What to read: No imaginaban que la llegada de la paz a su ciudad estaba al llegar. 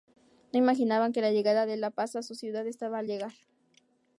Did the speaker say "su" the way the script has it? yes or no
yes